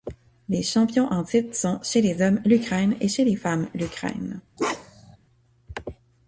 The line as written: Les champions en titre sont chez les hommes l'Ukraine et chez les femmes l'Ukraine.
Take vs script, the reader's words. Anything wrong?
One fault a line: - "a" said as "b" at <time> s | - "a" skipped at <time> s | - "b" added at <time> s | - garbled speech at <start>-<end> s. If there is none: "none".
none